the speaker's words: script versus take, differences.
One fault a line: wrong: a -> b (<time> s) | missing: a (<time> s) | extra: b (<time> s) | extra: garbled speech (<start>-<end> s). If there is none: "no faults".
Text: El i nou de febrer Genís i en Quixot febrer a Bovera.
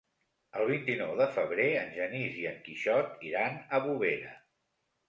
extra: vint (0.7 s)
extra: en (1.8 s)
wrong: febrer -> iran (3.3 s)